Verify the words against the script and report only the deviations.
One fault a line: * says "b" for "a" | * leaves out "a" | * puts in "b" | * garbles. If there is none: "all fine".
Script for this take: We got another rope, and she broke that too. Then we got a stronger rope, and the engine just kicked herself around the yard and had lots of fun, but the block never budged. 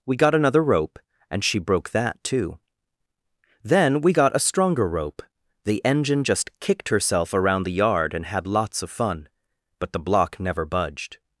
* leaves out "and"